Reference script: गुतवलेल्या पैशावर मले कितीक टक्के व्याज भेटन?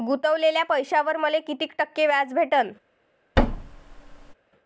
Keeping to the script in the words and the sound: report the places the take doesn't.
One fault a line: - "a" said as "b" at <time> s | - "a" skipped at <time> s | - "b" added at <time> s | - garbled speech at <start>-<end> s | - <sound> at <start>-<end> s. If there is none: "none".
- thud at 3.4-4.3 s